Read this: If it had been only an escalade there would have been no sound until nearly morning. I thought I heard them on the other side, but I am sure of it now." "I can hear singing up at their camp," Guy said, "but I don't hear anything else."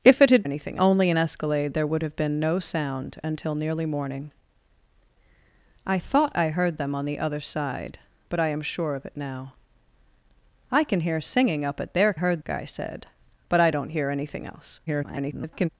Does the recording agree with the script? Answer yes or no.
no